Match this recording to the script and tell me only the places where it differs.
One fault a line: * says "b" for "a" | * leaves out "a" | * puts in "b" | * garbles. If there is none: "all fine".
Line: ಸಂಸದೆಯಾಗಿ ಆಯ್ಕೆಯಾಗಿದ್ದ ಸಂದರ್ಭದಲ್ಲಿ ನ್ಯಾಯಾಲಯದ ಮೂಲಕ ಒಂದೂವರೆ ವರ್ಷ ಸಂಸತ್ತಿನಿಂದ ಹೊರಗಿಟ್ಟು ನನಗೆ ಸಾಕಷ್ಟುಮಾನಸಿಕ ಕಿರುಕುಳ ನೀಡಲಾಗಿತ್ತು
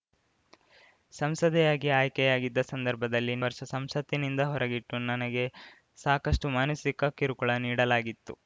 * leaves out "ನ್ಯಾಯಾಲಯದ ಮೂಲಕ ಒಂದೂವರೆ"